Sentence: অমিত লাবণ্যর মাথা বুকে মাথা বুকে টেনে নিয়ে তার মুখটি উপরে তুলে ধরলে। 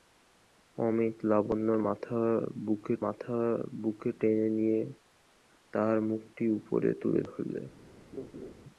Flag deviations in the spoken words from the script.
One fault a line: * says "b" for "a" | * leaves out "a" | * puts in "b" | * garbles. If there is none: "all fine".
all fine